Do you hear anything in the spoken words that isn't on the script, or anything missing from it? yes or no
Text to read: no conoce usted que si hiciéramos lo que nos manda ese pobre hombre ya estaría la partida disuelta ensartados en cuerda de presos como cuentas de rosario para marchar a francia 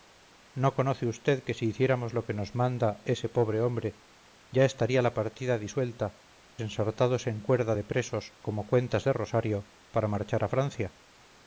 no